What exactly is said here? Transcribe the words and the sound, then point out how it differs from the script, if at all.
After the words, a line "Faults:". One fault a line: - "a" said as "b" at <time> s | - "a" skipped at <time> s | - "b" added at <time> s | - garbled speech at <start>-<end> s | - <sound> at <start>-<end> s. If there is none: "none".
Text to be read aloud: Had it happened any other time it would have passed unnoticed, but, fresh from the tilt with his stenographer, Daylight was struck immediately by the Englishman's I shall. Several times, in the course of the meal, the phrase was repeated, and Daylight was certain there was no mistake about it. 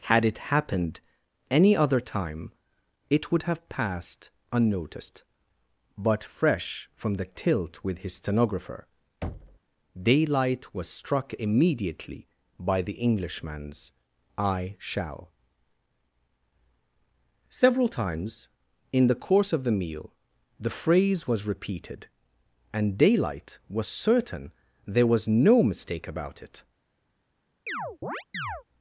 Had it happened any other time it would have passed unnoticed, but, fresh from the tilt with his stenographer, Daylight was struck immediately by the Englishman's I shall. Several times, in the course of the meal, the phrase was repeated, and Daylight was certain there was no mistake about it.
Faults:
- thud at 9.2-9.6 s
- chirp at 27.7-28.6 s